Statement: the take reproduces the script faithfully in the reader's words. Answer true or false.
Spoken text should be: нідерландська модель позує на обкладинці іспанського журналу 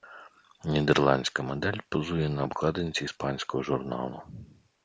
true